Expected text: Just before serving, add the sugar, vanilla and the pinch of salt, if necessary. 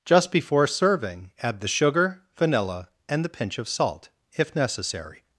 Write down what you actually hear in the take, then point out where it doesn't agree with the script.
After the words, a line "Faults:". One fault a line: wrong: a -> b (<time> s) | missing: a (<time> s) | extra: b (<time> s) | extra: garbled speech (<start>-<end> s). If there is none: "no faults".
Just before serving, add the sugar, vanilla and the pinch of salt, if necessary.
Faults:
no faults